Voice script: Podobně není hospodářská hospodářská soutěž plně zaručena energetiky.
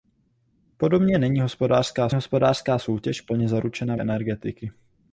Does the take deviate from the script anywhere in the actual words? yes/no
no